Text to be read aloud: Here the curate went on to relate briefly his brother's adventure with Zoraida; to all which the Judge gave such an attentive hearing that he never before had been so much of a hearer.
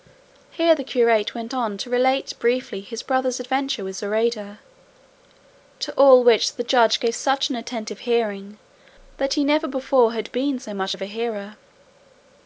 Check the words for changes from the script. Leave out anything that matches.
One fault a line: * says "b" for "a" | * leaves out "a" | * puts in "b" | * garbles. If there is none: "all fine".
all fine